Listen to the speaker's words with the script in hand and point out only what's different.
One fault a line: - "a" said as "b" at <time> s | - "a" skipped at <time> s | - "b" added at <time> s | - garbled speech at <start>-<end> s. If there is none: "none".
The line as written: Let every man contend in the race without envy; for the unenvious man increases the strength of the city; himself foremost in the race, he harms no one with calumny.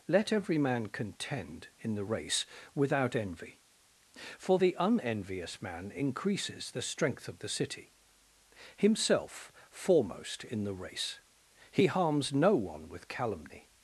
none